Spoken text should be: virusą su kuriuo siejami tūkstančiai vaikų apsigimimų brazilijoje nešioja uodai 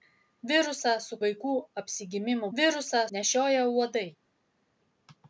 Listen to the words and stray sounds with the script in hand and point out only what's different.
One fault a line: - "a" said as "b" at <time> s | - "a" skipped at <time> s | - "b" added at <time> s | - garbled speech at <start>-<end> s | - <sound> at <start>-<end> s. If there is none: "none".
- "kuriuo siejami tūkstančiai" skipped at 1.2 s
- "brazilijoje" said as "virusą" at 2.6 s